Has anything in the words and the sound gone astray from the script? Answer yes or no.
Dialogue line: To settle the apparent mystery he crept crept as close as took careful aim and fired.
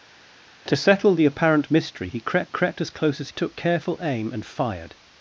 no